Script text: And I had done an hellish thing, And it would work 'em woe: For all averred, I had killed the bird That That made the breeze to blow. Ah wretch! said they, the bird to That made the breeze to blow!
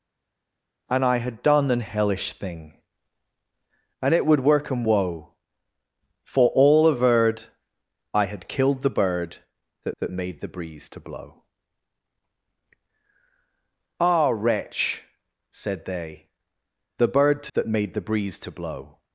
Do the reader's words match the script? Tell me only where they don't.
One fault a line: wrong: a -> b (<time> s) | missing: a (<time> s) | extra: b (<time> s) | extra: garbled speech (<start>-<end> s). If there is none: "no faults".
no faults